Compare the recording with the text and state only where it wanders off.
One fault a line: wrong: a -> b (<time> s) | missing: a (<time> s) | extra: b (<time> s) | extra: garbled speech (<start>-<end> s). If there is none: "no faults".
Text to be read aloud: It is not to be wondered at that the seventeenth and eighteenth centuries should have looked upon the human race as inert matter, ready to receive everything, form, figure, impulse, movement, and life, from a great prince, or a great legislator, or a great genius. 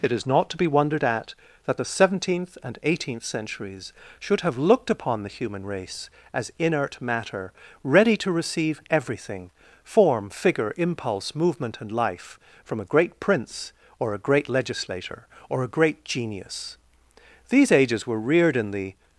extra: These ages were reared in the (17.5 s)